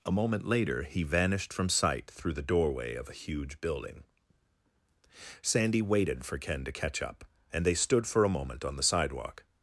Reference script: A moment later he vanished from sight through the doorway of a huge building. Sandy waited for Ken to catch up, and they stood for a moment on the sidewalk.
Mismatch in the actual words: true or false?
false